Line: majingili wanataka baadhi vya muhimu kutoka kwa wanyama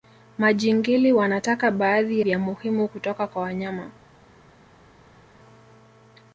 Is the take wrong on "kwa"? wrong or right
right